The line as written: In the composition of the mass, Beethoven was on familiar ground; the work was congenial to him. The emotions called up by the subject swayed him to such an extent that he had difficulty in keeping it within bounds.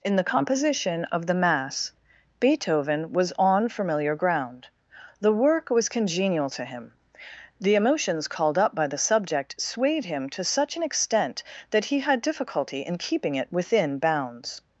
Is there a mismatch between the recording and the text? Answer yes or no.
no